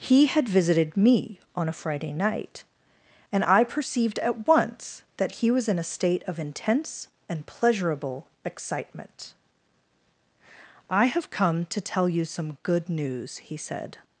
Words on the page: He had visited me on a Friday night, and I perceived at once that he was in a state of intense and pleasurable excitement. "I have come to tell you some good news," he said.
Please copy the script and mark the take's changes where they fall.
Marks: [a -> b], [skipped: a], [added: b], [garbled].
He had visited me on a Friday night, and I perceived at once that he was in a state of intense and pleasurable excitement. "I have come to tell you some good news," he said.